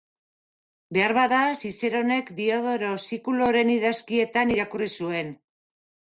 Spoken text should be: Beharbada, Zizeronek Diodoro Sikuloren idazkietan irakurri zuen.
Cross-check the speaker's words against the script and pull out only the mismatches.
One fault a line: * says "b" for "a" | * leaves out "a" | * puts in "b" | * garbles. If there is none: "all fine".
all fine